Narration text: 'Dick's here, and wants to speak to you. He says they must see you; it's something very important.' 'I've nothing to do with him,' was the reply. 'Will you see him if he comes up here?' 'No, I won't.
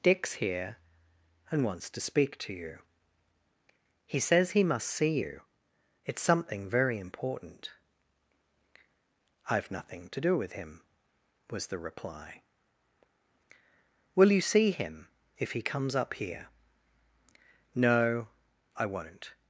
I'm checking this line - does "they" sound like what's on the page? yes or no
no